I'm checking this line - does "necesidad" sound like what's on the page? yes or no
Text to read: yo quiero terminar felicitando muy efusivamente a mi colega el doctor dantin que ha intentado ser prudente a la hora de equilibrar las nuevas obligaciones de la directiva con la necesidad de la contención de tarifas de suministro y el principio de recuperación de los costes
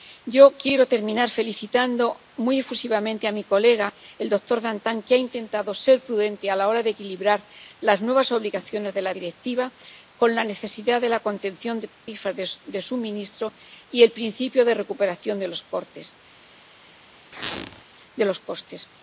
yes